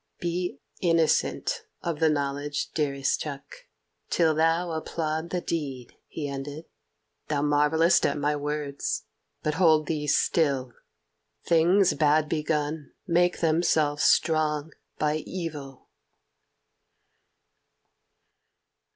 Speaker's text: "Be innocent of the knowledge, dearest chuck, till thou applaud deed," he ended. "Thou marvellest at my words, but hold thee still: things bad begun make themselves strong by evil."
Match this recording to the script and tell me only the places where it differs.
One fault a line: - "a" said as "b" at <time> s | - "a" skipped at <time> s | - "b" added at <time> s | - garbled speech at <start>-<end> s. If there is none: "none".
- "the" added at 5.3 s